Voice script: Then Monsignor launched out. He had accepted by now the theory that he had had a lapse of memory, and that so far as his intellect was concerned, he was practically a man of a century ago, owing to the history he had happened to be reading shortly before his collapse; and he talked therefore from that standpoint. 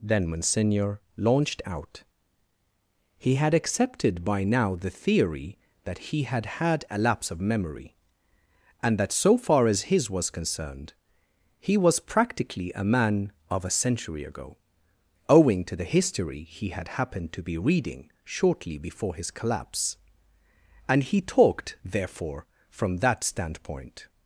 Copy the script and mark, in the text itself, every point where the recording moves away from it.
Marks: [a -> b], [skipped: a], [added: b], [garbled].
Then Monsignor launched out. He had accepted by now the theory that he had had a lapse of memory, and that so far as his [skipped: intellect] was concerned, he was practically a man of a century ago, owing to the history he had happened to be reading shortly before his collapse; and he talked therefore from that standpoint.